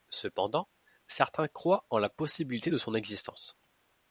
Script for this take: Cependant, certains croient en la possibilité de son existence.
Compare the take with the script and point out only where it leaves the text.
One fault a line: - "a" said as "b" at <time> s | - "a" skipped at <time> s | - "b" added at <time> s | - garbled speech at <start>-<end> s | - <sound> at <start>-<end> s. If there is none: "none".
none